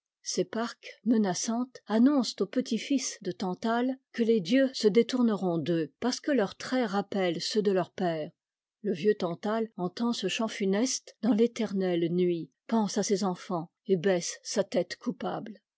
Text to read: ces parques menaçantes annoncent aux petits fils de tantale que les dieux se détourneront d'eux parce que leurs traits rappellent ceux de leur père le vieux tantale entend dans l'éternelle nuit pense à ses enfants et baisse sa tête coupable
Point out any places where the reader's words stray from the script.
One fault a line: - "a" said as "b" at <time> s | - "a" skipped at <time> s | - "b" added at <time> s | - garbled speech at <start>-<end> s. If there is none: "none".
- "ce chant funeste" added at 10.1 s